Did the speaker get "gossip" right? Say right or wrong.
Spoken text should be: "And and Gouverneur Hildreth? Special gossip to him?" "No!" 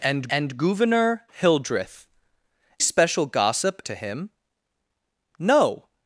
right